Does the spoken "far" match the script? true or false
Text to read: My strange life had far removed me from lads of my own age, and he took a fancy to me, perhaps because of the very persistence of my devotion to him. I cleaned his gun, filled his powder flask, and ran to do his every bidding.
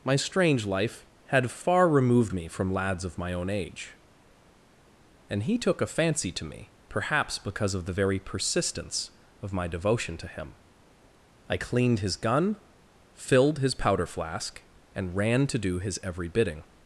true